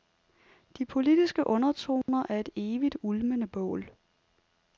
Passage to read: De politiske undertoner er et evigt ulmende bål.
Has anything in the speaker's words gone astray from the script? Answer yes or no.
no